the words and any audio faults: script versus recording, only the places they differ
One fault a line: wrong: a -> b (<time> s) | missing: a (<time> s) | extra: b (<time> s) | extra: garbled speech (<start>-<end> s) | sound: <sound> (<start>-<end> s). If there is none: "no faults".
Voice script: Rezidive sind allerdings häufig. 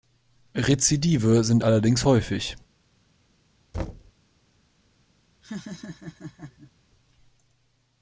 sound: thud (3.7-4.1 s)
sound: laugh (5.4-6.7 s)